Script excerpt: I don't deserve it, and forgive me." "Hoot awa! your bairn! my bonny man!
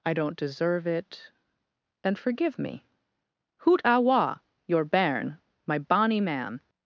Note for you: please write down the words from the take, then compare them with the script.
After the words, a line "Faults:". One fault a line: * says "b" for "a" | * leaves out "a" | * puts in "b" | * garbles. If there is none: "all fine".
I don't deserve it, and forgive me." "Hoot awa! your bairn! my bonny man!
Faults:
all fine